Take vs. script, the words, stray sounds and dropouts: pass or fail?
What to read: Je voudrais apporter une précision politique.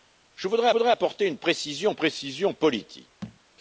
fail